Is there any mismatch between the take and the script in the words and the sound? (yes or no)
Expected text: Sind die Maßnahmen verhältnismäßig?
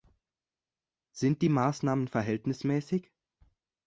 no